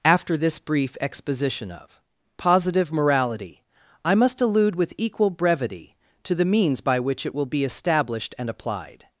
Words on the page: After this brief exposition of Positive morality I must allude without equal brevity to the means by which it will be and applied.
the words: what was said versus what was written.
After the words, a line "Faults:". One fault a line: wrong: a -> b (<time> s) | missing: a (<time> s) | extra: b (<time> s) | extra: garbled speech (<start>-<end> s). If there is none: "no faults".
After this brief exposition of Positive morality I must allude with equal brevity to the means by which it will be established and applied.
Faults:
wrong: without -> with (4.8 s)
extra: established (7.6 s)